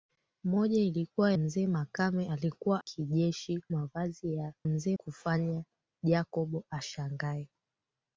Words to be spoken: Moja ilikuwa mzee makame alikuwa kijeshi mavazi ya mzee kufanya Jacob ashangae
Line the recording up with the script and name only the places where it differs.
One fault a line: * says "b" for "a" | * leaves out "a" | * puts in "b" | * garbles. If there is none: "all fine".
all fine